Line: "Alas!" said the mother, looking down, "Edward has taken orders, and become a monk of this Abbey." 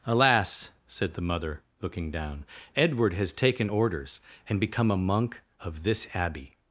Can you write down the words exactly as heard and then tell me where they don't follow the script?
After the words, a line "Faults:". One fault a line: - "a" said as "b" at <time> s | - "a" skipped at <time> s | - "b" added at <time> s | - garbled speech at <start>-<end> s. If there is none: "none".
"Alas!" said the mother, looking down, "Edward has taken orders, and become a monk of this Abbey."
Faults:
none